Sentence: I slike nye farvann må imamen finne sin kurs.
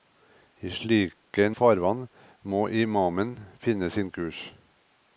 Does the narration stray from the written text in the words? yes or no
yes